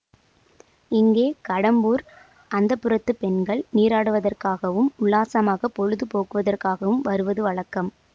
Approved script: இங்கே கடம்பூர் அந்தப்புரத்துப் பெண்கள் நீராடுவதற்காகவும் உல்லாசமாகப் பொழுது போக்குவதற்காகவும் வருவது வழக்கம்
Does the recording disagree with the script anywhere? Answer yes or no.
no